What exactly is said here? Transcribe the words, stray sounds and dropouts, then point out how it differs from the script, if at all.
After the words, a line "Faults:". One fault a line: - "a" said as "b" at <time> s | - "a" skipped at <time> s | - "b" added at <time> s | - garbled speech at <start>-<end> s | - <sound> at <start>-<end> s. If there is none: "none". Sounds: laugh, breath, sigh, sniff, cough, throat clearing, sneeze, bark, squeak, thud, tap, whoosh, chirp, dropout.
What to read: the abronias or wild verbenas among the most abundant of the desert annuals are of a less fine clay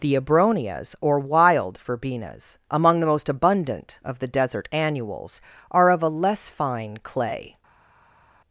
the abronias or wild verbenas among the most abundant of the desert annuals are of a less fine clay
Faults:
none